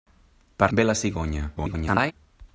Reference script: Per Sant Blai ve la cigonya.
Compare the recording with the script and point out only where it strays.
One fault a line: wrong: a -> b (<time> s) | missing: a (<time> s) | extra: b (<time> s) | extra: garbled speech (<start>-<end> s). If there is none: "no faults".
missing: Sant Blai (0.7 s)
extra: garbled speech (1.6-2.1 s)